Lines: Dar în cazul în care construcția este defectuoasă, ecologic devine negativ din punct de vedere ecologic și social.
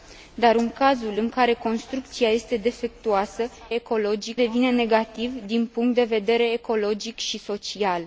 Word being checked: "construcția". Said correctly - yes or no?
yes